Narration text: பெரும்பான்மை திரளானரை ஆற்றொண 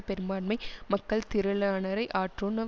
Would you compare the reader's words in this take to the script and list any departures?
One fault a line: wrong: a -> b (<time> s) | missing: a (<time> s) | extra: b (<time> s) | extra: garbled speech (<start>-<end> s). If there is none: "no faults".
extra: மக்கள் (0.9 s)